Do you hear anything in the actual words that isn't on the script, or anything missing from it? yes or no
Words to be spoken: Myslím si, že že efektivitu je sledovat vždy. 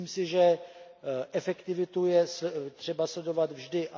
yes